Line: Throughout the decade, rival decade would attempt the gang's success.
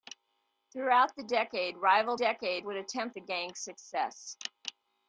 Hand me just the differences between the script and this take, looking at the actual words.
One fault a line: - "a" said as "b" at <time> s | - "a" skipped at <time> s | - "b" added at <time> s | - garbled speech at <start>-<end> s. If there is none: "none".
none